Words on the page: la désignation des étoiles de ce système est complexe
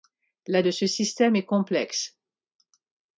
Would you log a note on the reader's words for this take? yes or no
yes